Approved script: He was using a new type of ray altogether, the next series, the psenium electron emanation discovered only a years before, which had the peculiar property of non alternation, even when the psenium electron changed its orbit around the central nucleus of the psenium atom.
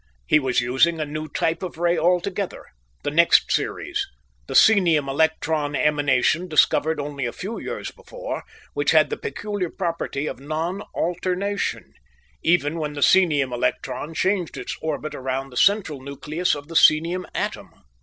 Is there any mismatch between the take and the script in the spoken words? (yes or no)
yes